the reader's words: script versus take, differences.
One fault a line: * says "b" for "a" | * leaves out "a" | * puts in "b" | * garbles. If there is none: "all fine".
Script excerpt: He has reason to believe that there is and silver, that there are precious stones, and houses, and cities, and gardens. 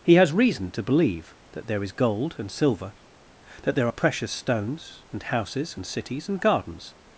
* puts in "gold"